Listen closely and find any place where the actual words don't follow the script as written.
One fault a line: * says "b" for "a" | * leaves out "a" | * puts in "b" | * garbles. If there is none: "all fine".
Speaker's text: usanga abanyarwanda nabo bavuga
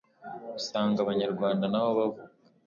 all fine